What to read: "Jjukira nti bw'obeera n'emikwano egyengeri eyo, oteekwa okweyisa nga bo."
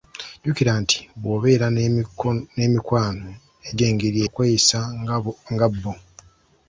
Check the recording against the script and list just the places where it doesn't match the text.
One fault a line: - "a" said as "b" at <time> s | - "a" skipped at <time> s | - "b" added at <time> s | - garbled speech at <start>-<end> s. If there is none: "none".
- "eyo oteekwa" skipped at 4.2 s